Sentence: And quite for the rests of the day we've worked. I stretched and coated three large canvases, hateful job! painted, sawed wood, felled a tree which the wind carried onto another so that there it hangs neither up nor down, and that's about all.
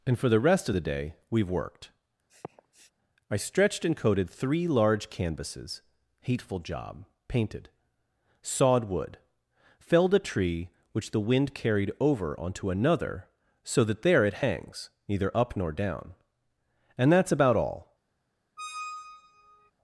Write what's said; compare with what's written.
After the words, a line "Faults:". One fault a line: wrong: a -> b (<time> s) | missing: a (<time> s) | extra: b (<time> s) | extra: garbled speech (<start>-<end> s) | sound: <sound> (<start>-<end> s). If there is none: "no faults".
And for the rest of the day we've worked. I stretched and coated three large canvases, hateful job! painted, sawed wood, felled a tree which the wind carried over onto another so that there it hangs neither up nor down, and that's about all.
Faults:
missing: quite (0.2 s)
wrong: rests -> rest (0.4 s)
sound: sniff (2.3-2.9 s)
extra: over (12.0 s)
sound: squeak (18.6-19.7 s)